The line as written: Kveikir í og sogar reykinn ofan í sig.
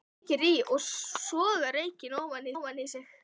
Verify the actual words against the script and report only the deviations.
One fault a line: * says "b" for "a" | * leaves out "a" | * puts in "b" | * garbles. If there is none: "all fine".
* puts in "ofan"